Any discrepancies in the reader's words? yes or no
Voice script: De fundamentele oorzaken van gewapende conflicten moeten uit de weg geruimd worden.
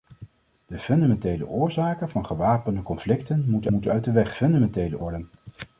yes